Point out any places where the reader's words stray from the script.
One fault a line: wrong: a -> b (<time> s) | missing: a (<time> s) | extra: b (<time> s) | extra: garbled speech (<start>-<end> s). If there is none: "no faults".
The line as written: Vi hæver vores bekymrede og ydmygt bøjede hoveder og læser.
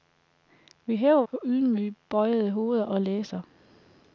missing: vores bekymrede (1.2 s)